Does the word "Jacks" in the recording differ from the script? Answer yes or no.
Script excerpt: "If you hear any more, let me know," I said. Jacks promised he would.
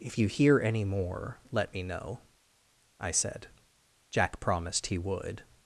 yes